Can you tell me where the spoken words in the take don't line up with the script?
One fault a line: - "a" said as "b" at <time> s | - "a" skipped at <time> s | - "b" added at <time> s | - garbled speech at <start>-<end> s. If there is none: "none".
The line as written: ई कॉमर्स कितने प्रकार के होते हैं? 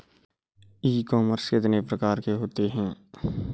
none